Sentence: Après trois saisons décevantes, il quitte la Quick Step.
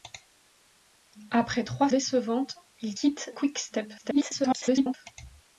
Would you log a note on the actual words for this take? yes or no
yes